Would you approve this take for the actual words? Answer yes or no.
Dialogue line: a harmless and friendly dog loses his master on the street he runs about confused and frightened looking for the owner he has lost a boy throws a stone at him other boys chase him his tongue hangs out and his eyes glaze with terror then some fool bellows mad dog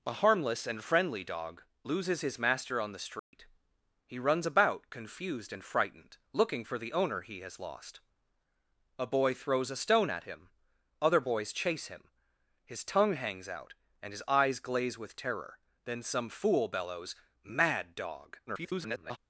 no